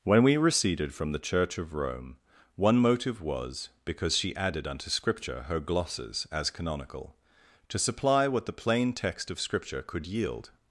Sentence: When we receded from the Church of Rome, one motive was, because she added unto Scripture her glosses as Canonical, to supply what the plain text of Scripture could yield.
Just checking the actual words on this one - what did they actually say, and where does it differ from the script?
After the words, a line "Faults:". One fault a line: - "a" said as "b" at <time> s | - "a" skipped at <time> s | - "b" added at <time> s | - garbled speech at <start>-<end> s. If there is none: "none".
When we receded from the Church of Rome, one motive was, because she added unto Scripture her glosses as Canonical, to supply what the plain text of Scripture could yield.
Faults:
none